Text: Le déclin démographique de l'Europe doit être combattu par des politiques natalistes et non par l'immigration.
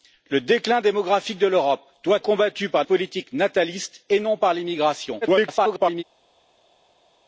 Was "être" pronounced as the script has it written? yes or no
no